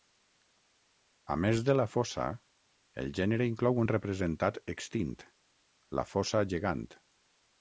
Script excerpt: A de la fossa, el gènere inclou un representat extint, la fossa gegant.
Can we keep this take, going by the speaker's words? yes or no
no